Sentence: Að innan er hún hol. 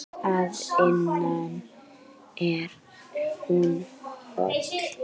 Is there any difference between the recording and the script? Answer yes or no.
no